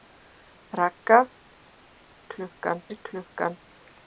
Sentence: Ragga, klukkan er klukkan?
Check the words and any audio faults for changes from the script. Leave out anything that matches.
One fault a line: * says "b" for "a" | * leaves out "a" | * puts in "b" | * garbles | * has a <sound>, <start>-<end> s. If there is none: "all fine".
all fine